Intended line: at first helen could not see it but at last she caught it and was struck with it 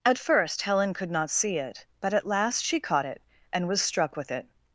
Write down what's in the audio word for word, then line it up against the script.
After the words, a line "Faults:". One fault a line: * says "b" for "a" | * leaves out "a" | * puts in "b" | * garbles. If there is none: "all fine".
at first helen could not see it but at last she caught it and was struck with it
Faults:
all fine